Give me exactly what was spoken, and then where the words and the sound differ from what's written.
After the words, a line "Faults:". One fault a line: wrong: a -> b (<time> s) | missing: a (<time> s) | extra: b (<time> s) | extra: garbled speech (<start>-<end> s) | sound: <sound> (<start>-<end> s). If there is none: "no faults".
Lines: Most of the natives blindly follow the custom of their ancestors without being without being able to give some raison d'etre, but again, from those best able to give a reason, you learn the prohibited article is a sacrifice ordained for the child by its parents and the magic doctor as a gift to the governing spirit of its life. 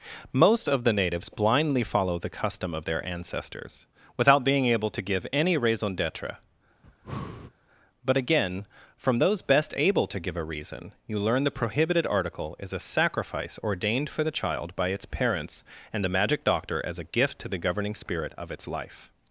Most of the natives blindly follow the custom of their ancestors without being able to give any raison d'etre, but again, from those best able to give a reason, you learn the prohibited article is a sacrifice ordained for the child by its parents and the magic doctor as a gift to the governing spirit of its life.
Faults:
missing: without being (4.7 s)
wrong: some -> any (5.3 s)
sound: breath (6.8-7.5 s)